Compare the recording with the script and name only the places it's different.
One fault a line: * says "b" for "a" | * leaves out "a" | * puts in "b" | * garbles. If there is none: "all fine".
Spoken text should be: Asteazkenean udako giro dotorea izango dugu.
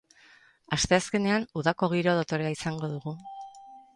all fine